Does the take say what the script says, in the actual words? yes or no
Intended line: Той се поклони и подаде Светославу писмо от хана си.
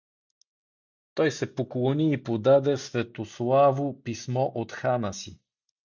yes